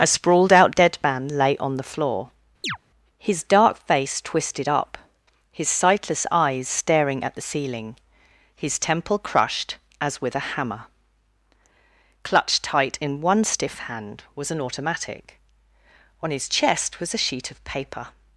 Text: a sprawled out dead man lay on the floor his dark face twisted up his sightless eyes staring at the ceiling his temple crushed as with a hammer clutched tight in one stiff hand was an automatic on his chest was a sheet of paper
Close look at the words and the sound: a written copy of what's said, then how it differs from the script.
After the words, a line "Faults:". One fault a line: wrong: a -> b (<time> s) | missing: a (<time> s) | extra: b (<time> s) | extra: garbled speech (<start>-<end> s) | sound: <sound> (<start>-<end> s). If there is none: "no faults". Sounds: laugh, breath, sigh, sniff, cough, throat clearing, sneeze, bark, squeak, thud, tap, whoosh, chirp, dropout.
a sprawled out dead man lay on the floor his dark face twisted up his sightless eyes staring at the ceiling his temple crushed as with a hammer clutched tight in one stiff hand was an automatic on his chest was a sheet of paper
Faults:
sound: chirp (2.6-2.8 s)